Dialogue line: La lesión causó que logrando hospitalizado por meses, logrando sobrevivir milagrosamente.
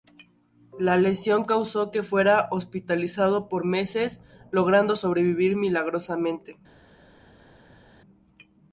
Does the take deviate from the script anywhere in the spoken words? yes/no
yes